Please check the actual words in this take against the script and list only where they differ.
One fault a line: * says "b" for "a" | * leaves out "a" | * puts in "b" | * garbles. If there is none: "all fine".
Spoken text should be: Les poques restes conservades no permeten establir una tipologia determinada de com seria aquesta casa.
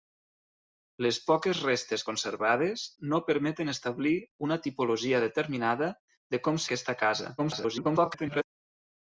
* leaves out "seria"
* garbles